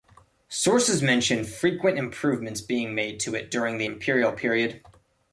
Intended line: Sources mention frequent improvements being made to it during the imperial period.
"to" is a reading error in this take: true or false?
false